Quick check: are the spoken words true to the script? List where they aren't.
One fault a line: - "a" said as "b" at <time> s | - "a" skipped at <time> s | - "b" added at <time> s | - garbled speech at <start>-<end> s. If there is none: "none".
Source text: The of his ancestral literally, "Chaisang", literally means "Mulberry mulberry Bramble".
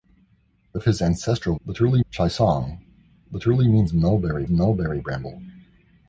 none